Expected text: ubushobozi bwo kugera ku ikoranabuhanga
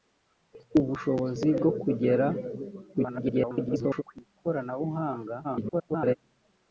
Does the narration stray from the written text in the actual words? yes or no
yes